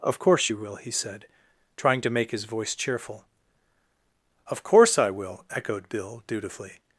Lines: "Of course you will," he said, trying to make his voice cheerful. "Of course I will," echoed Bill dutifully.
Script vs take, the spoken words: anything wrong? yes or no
no